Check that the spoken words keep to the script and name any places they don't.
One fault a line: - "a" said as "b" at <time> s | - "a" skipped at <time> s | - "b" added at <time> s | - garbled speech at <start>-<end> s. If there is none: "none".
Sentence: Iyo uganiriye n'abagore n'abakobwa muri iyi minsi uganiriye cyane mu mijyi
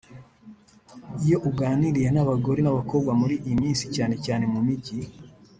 - "uganiriye" said as "cyane" at 3.9 s